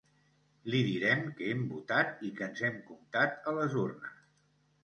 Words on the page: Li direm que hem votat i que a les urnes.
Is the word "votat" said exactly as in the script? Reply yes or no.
yes